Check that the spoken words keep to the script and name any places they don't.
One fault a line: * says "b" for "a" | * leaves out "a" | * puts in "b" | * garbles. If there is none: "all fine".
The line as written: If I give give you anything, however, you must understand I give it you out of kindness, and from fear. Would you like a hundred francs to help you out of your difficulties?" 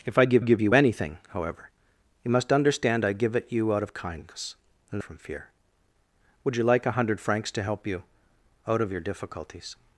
all fine